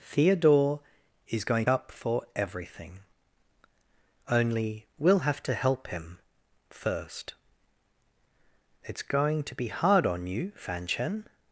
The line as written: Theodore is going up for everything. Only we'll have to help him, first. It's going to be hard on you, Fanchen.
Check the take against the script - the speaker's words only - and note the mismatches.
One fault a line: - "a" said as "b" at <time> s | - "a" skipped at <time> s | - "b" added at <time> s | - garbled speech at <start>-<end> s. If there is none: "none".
none